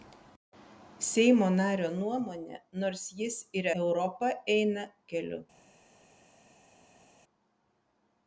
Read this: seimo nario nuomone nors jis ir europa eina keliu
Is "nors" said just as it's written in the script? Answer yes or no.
yes